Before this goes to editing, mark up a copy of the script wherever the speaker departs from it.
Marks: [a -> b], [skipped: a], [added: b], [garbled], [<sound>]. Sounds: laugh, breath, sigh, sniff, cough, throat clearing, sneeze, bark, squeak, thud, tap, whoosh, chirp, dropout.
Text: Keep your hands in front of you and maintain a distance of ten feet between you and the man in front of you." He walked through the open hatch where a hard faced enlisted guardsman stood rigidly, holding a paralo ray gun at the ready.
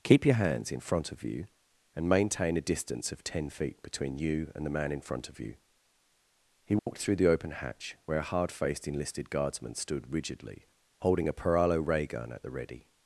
Keep your hands in front of you and maintain a distance of ten feet between you and the man in front of you." He walked [dropout] through the open hatch where a hard faced enlisted guardsman stood rigidly, holding a paralo ray gun at the ready.